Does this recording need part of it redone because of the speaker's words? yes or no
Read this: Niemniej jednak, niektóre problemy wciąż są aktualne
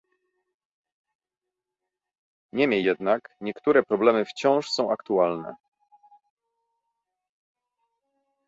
no